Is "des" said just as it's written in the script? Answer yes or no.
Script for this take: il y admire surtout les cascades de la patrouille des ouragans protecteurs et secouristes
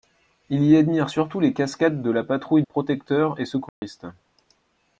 no